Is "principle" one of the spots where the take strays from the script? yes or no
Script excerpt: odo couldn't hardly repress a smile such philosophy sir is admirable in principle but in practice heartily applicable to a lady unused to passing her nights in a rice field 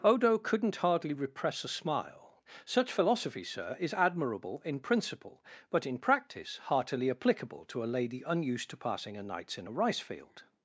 no